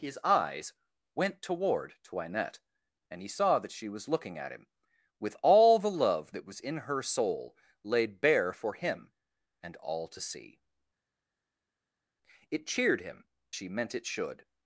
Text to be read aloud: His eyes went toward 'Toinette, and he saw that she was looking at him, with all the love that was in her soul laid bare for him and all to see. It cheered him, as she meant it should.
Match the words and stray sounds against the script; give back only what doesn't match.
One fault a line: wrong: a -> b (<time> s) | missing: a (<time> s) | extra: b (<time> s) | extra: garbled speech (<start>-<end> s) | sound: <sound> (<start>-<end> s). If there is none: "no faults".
missing: as (13.3 s)